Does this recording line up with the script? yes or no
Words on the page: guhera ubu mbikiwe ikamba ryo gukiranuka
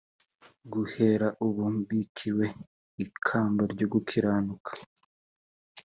yes